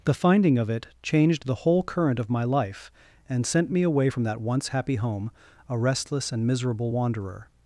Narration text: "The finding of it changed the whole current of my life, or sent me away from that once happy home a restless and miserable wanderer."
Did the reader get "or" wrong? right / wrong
wrong